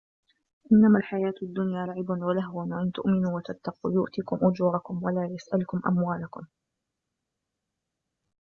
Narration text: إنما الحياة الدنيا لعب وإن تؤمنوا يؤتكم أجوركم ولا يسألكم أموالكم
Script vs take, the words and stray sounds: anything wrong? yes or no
yes